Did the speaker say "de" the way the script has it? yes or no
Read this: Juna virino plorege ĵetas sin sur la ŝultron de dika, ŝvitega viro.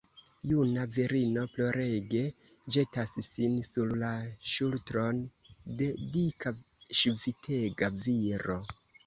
yes